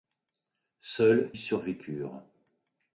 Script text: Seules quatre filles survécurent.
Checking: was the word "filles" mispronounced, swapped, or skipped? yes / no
yes